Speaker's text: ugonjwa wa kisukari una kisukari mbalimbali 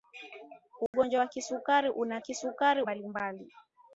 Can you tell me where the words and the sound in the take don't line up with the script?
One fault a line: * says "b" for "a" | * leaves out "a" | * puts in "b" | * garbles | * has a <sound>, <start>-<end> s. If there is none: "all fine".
* has a dropout, 0.9-0.9 s